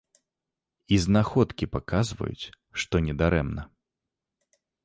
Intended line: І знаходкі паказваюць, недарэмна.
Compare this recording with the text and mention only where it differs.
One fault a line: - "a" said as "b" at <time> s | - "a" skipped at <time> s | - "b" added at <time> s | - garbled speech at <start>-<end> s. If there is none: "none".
- "што" added at 2.8 s